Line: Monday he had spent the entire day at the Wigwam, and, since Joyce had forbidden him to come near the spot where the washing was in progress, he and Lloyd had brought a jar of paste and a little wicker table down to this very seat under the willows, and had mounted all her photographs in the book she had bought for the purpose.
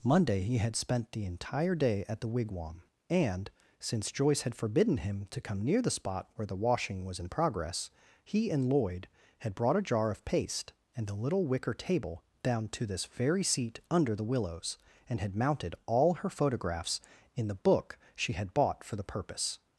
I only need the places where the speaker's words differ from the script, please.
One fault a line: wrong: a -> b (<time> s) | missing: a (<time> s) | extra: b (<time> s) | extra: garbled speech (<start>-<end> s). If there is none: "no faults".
no faults